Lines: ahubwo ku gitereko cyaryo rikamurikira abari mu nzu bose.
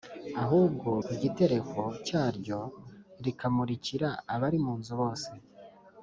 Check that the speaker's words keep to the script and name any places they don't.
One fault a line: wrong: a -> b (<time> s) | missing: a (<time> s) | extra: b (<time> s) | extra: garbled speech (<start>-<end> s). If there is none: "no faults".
no faults